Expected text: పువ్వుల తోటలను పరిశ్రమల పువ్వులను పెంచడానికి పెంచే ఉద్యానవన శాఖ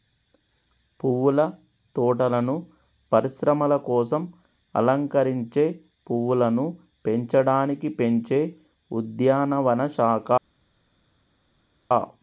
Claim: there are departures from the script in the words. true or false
true